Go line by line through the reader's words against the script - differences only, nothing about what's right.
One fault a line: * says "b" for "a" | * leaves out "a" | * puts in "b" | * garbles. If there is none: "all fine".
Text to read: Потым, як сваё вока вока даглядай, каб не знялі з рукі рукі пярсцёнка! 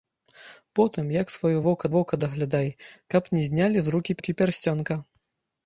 all fine